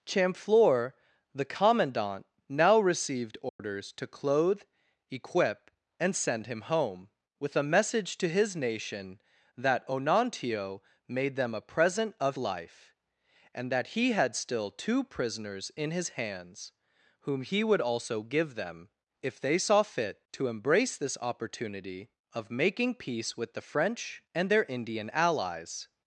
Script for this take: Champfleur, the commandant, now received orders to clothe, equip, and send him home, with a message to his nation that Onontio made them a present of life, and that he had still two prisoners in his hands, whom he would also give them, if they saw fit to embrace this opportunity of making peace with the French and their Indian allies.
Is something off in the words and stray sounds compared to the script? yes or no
yes